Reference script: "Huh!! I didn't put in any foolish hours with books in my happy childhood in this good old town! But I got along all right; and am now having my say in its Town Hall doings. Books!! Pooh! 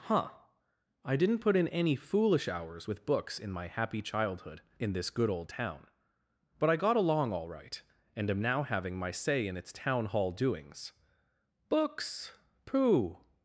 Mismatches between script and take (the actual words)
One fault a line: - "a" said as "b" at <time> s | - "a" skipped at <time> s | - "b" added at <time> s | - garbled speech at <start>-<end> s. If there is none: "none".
none